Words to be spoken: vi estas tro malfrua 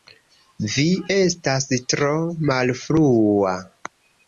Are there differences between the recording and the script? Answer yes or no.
no